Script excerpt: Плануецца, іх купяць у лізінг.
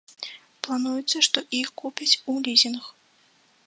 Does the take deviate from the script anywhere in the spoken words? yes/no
yes